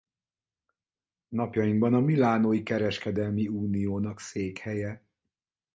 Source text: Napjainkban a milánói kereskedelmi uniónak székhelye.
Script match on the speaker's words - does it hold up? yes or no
yes